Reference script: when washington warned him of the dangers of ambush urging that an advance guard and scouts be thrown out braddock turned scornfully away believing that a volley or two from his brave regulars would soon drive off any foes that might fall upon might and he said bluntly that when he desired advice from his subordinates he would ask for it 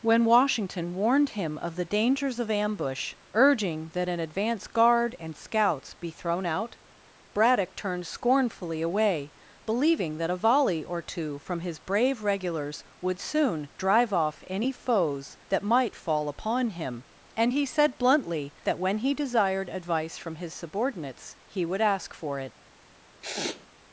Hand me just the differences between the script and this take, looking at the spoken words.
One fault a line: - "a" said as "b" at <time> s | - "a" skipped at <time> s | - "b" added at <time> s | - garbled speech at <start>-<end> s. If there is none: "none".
- "might" said as "him" at 16.7 s